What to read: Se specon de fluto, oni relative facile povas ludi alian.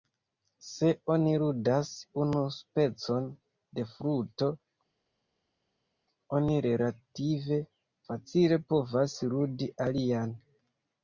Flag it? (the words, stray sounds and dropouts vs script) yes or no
yes